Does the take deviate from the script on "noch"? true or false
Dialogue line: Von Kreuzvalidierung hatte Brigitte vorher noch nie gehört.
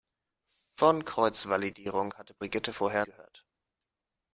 true